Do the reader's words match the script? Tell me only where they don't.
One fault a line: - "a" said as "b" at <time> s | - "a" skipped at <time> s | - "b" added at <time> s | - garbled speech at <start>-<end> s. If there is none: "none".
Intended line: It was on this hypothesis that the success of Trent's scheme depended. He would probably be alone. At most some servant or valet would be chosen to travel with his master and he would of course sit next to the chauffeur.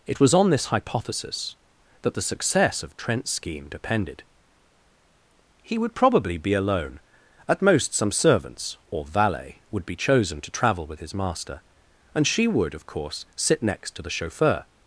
- "servant" said as "servants" at 8.1 s
- "he" said as "she" at 12.3 s